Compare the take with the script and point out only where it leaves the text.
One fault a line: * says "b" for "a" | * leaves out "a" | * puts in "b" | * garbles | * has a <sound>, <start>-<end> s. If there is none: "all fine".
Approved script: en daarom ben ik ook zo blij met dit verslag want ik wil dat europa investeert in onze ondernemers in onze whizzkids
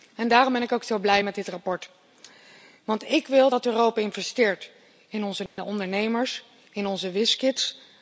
* has a dropout, 5.5-5.6 s